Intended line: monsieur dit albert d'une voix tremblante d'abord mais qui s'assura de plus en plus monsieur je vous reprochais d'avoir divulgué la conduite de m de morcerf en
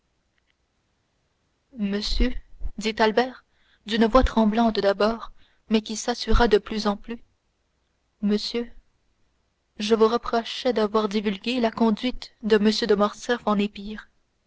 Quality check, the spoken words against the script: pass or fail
pass